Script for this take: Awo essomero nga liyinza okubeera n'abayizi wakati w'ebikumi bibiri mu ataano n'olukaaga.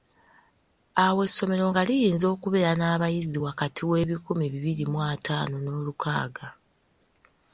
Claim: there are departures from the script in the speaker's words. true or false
false